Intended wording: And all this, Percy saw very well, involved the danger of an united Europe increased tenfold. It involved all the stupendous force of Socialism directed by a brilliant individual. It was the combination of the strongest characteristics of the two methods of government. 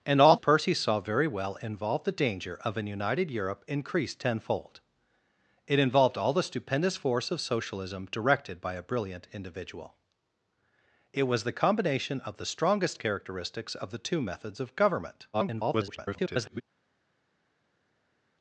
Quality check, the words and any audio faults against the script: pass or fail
fail